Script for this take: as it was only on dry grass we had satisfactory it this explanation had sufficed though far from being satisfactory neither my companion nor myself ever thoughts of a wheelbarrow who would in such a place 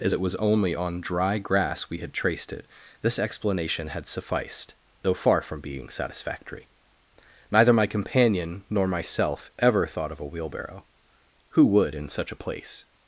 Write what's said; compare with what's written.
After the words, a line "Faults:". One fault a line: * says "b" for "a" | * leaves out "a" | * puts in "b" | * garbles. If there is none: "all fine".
as it was only on dry grass we had traced it this explanation had sufficed though far from being satisfactory neither my companion nor myself ever thought of a wheelbarrow who would in such a place
Faults:
* says "traced" for "satisfactory"
* says "thought" for "thoughts"